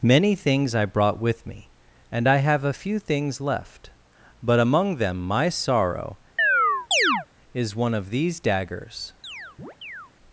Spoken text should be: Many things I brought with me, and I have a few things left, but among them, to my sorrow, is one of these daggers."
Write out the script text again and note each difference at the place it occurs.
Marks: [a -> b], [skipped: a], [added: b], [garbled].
Many things I brought with me, and I have a few things left, but among them, [skipped: to] my sorrow, is one of these daggers."